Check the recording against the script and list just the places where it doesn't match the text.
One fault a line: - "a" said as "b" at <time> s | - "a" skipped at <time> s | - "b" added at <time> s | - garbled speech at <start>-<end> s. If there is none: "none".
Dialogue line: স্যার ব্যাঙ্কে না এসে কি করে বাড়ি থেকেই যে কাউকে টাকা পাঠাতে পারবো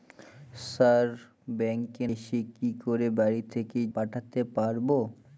- "না" skipped at 2.1 s
- "যে কাউকে টাকা" skipped at 3.9 s